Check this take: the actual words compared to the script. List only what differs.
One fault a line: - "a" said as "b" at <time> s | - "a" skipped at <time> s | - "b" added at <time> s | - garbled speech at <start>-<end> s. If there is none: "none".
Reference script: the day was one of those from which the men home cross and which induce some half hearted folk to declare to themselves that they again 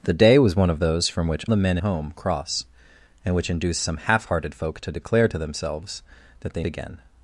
none